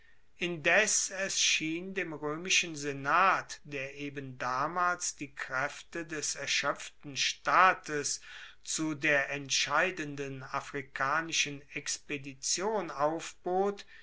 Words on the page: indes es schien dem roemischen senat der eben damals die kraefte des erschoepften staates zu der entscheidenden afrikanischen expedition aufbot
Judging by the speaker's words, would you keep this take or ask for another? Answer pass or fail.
pass